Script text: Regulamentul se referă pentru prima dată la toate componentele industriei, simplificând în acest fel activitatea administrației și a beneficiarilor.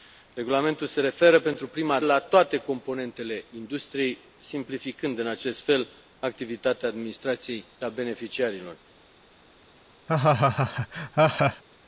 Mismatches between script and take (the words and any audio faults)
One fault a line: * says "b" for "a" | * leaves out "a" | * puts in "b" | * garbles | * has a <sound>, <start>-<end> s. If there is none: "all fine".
* leaves out "dată"
* leaves out "și"
* has a laugh, 10.1-11.6 s